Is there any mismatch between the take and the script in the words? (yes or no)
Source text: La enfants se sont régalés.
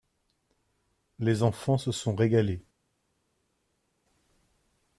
yes